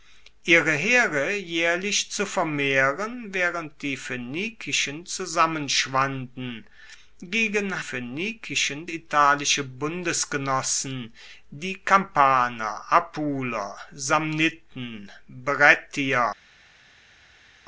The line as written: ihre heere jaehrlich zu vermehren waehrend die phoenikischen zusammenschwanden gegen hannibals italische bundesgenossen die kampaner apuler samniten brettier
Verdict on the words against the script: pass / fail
fail